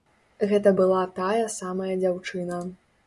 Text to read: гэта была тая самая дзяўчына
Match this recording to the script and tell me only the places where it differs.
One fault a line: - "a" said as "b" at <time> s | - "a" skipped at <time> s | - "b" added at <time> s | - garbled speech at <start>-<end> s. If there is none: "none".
none